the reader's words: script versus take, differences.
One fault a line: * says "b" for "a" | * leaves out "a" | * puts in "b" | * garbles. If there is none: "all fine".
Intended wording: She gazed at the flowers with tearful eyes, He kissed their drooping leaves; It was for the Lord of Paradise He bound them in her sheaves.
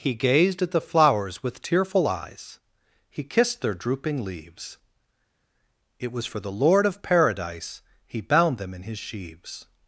* says "He" for "She"
* says "his" for "her"